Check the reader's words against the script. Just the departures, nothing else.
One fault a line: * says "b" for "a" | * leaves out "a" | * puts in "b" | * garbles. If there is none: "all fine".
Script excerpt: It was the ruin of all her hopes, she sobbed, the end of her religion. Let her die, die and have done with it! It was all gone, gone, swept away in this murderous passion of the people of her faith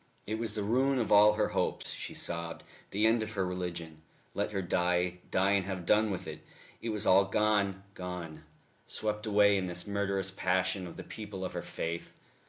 all fine